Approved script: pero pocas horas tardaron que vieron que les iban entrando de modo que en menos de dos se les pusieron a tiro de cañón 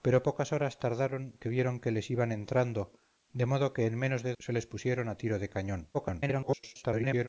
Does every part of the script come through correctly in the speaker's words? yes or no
no